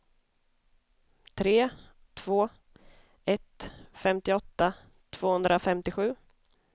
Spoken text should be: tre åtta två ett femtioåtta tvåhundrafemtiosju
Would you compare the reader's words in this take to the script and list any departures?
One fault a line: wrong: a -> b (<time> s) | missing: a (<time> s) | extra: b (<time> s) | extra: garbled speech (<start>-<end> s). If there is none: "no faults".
missing: åtta (1.7 s)